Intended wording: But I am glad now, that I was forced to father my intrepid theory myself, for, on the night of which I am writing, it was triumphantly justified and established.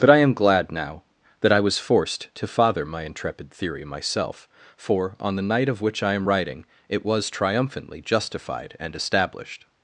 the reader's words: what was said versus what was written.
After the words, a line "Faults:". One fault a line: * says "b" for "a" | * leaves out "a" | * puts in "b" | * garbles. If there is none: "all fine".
But I am glad now, that I was forced to father my intrepid theory myself, for, on the night of which I am writing, it was triumphantly justified and established.
Faults:
all fine